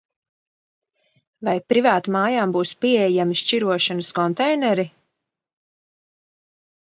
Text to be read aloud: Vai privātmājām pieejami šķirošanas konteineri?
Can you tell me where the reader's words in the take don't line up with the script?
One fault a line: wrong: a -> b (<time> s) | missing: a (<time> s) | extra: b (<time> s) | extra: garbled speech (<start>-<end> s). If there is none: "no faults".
extra: būs (2.5 s)